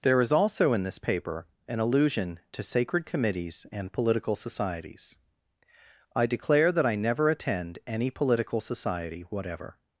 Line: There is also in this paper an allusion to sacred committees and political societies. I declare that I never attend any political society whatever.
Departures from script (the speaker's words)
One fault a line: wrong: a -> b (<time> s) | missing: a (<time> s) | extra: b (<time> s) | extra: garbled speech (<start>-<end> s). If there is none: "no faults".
no faults